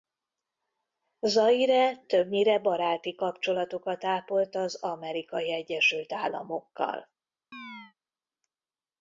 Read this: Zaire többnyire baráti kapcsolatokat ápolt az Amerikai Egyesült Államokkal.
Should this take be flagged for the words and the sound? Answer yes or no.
yes